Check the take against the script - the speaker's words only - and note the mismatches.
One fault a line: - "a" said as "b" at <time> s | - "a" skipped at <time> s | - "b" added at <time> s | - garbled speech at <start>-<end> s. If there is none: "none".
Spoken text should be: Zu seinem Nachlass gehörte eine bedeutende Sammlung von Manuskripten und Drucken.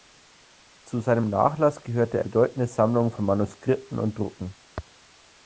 - "eine" skipped at 2.2 s